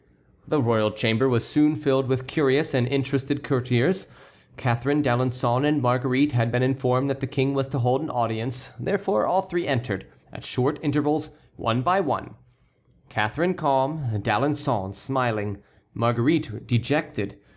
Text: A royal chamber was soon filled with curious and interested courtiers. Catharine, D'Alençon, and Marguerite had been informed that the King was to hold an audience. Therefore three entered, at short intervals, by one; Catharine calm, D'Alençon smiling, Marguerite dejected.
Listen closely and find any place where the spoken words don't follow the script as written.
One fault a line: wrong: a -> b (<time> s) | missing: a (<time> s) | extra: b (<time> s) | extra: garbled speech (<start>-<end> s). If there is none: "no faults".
wrong: A -> The (0.5 s)
extra: all (9.3 s)
extra: one (11.6 s)